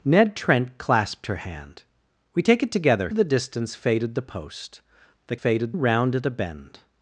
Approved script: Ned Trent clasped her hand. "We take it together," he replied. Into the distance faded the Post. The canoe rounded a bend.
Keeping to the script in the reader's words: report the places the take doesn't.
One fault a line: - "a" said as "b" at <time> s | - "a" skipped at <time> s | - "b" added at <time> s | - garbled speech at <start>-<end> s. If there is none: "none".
- "he replied Into" skipped at 3.1 s
- "canoe" said as "faded" at 5.3 s